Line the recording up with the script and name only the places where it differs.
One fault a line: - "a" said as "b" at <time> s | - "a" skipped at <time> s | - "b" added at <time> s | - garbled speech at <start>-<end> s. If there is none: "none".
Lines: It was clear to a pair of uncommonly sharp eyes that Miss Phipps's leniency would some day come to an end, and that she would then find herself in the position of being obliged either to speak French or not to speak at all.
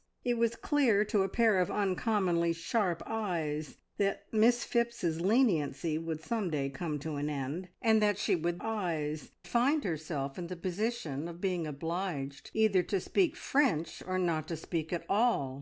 - "then" said as "eyes" at 8.6 s